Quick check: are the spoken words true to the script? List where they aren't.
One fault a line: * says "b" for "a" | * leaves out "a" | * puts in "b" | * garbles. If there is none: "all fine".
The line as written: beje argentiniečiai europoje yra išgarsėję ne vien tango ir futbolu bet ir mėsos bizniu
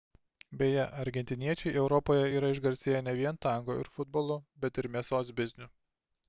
all fine